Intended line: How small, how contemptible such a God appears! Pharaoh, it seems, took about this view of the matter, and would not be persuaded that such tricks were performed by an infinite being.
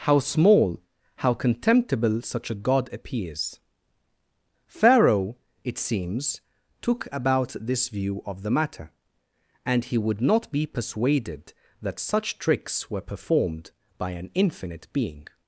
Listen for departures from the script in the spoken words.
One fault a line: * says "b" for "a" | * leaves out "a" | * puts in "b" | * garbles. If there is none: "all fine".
* puts in "he"